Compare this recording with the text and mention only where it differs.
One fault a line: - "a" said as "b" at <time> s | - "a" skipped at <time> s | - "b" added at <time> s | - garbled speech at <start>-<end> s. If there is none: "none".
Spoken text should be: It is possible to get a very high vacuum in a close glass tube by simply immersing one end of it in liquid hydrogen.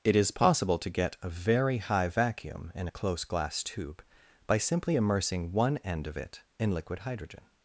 none